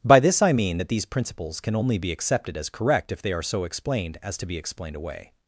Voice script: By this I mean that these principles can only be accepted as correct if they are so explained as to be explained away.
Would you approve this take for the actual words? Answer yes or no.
yes